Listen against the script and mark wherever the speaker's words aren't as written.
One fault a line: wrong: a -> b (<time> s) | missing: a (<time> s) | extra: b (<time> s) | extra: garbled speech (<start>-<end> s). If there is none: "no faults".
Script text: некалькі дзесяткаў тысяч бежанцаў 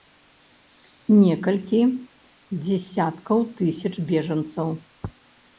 no faults